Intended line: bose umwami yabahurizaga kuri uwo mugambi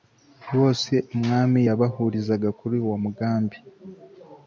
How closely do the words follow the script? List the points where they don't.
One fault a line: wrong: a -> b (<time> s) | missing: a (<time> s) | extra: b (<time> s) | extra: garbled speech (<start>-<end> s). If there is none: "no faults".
no faults